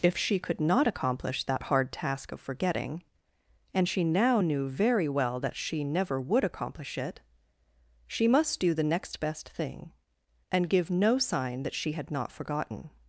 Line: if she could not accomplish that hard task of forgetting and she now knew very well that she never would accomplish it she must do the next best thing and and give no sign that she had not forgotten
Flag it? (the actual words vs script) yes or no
yes